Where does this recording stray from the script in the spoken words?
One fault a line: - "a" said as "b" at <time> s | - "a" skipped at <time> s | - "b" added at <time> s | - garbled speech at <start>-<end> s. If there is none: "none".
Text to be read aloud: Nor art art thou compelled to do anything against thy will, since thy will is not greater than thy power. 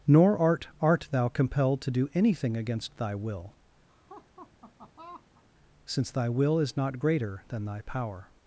none